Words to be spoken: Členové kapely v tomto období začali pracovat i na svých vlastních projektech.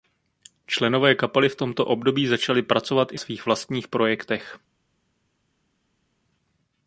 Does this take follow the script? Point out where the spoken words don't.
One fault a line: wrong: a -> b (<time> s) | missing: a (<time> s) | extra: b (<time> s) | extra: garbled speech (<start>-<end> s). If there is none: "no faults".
missing: na (3.2 s)